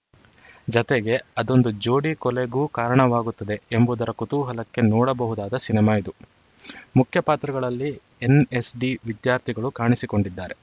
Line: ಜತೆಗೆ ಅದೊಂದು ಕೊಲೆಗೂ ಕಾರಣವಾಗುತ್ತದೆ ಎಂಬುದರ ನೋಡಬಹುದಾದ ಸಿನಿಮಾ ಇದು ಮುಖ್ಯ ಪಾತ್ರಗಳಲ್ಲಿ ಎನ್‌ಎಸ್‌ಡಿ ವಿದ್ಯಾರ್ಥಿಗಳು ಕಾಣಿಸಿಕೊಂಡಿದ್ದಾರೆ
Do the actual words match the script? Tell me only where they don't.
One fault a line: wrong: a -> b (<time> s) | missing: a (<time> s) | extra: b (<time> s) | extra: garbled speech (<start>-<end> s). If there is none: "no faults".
extra: ಜೋಡಿ (1.8 s)
extra: ಕುತೂಹಲಕ್ಕೆ (4.1 s)